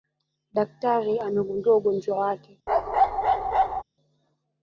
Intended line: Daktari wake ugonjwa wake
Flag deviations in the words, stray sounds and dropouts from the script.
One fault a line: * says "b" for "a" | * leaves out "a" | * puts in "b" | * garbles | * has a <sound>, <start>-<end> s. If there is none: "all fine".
* says "amegundua" for "wake"
* has a bark, 2.7-3.8 s